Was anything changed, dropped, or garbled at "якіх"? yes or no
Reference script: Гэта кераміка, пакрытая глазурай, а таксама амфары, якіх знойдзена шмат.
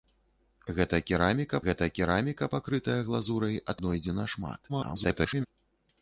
yes